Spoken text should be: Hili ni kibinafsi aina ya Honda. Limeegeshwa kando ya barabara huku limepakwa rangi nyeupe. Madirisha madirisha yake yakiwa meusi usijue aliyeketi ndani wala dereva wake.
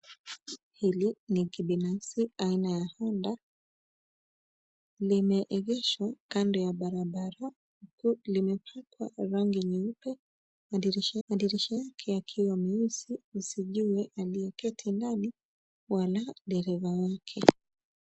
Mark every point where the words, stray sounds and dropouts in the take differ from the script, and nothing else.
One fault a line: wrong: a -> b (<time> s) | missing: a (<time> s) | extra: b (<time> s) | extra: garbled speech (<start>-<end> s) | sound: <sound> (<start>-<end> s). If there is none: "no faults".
no faults